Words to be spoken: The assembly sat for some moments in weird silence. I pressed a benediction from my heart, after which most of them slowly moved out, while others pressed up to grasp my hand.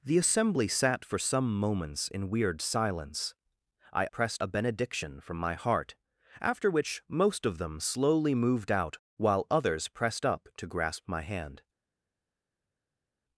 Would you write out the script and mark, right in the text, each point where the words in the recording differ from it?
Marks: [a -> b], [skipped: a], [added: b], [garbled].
The assembly sat for some moments in weird silence. I pressed a benediction from my heart, after which most of them slowly moved out, while others pressed up to grasp my hand.